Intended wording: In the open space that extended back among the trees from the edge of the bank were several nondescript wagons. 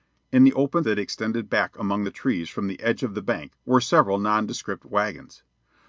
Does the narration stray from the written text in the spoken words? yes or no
yes